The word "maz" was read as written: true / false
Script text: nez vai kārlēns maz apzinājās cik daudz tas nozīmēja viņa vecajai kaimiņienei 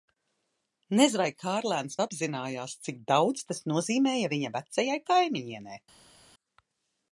false